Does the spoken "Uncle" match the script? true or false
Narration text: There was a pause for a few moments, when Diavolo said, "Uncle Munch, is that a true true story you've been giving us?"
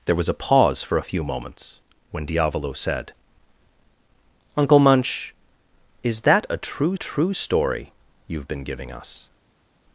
true